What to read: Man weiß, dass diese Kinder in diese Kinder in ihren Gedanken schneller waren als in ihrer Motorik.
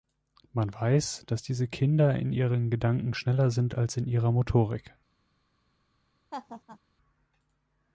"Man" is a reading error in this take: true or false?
false